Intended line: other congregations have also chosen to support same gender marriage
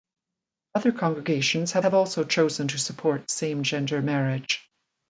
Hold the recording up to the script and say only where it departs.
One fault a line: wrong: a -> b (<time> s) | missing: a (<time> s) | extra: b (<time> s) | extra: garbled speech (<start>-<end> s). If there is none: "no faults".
extra: have (1.8 s)